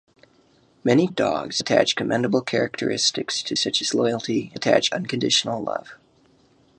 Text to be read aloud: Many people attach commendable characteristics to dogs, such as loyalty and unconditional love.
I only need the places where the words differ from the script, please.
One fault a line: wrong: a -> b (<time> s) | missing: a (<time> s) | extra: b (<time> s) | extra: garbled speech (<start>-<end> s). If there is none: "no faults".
wrong: people -> dogs (1.1 s)
missing: dogs (3.6 s)
wrong: and -> attach (4.5 s)